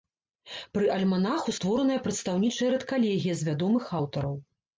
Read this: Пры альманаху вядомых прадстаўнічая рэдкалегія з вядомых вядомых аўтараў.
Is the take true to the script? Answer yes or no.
no